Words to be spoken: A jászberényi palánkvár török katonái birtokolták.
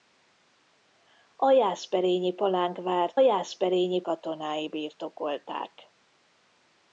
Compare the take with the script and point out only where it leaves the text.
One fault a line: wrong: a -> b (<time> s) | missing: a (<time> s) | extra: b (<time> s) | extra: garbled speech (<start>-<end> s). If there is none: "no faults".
wrong: török -> jászberényi (3.2 s)